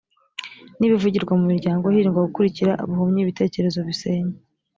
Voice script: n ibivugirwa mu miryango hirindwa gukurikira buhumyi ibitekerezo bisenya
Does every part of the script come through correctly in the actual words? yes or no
yes